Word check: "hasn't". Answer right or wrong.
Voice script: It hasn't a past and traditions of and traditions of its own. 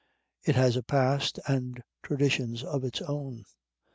wrong